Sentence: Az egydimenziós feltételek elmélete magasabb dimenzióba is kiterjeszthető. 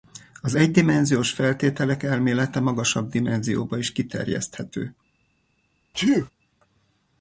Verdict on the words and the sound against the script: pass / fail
fail